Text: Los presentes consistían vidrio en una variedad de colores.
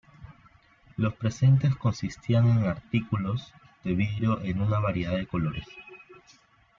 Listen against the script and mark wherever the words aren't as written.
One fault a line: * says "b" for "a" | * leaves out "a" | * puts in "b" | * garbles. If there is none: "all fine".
* puts in "en artículos de"